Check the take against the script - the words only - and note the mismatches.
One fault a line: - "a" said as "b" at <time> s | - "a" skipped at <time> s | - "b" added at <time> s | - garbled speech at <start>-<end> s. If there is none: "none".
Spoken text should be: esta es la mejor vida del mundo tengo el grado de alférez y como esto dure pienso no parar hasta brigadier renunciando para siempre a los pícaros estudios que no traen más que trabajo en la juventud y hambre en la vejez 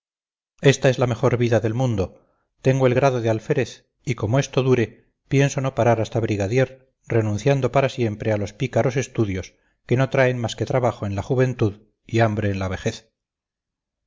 none